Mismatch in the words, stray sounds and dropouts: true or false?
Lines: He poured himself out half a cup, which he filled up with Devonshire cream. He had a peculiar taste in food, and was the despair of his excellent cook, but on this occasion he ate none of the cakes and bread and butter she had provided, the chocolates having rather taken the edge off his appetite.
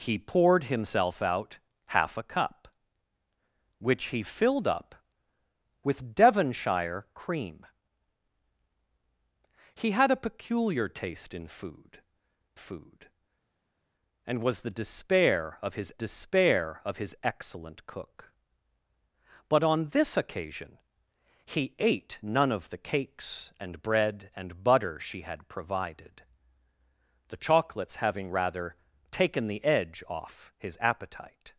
true